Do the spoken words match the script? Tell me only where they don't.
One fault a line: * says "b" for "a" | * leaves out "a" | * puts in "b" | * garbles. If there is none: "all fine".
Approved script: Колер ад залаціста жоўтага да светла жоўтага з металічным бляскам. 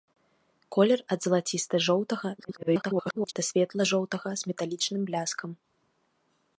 * garbles